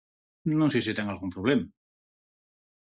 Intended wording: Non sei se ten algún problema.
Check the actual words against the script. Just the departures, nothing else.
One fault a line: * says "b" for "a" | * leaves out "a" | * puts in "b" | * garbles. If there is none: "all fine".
all fine